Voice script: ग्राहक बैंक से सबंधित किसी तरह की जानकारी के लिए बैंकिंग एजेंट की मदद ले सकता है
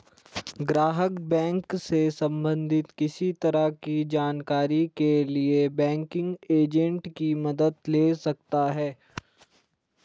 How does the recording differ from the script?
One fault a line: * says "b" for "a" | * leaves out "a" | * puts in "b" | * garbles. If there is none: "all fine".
all fine